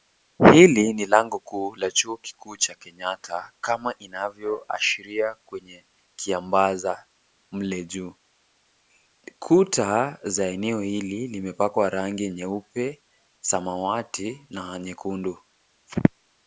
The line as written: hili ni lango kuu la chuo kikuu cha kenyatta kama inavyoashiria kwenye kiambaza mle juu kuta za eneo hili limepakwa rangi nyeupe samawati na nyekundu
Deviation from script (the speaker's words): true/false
false